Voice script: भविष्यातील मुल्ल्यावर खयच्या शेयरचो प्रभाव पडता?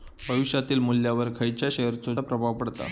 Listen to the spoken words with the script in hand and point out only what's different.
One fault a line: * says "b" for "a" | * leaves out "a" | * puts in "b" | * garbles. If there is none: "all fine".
all fine